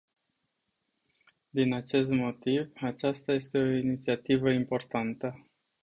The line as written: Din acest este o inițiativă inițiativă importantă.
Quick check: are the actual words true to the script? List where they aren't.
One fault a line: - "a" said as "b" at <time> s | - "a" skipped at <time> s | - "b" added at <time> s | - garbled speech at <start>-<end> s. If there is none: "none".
- "motiv aceasta" added at 2.1 s
- "inițiativă" skipped at 4.5 s